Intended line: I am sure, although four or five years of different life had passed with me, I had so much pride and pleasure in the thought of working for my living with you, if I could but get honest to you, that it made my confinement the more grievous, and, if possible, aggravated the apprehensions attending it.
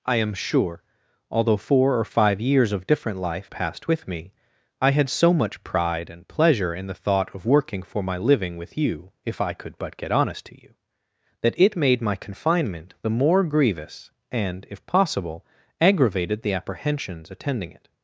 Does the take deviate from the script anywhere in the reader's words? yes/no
yes